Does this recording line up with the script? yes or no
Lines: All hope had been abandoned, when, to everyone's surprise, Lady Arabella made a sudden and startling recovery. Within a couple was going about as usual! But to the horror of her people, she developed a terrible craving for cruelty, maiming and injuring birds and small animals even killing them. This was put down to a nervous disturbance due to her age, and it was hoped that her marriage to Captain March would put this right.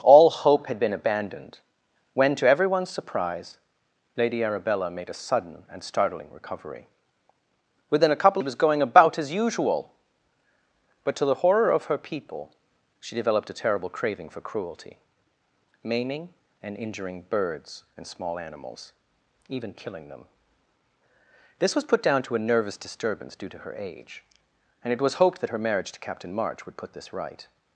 yes